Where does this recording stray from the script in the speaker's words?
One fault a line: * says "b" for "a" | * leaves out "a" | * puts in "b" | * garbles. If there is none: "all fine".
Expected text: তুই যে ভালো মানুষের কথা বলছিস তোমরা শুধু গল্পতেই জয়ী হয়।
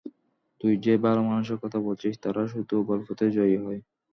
* says "তারা" for "তোমরা"